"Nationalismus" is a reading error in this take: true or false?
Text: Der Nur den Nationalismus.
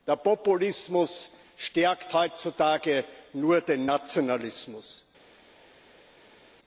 false